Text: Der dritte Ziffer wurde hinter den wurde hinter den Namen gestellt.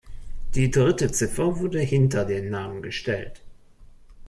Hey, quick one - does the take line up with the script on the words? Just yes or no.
no